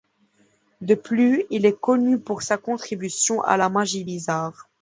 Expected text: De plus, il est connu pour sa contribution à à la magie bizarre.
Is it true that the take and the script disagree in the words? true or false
true